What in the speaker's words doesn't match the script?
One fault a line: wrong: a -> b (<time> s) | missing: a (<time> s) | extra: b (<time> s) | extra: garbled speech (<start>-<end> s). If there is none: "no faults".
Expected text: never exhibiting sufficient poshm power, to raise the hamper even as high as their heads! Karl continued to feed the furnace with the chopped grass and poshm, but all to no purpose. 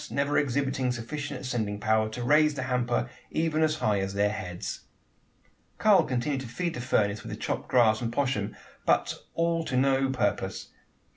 wrong: poshm -> ascending (1.4 s)